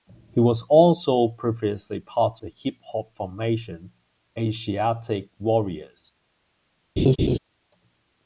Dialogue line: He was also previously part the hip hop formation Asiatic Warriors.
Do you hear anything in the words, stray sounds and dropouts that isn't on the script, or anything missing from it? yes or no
yes